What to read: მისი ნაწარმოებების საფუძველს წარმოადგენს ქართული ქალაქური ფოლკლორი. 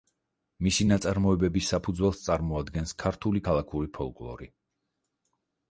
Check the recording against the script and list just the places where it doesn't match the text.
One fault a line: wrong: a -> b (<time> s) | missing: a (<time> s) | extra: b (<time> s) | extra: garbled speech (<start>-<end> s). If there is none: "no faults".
no faults